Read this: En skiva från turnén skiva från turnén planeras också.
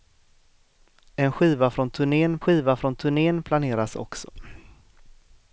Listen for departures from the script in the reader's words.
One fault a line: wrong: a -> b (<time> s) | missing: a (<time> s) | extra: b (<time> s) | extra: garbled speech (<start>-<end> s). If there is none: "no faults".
no faults